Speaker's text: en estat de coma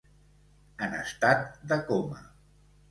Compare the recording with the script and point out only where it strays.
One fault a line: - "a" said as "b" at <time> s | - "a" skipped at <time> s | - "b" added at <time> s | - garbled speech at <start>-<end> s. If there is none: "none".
none